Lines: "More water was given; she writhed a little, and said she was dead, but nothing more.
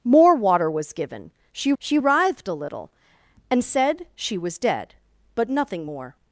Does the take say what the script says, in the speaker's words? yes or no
no